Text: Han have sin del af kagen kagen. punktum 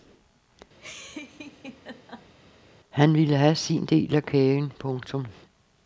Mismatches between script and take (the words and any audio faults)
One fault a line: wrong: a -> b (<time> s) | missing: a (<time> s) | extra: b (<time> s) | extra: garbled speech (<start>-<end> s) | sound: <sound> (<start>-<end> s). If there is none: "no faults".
sound: laugh (0.8-2.3 s)
extra: ville (3.1 s)
missing: kagen (4.7 s)